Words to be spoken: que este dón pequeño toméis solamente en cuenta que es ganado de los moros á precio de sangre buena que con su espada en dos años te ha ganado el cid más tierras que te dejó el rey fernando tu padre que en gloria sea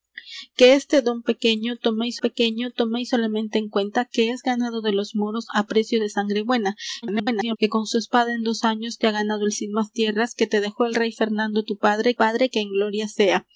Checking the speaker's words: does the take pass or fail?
fail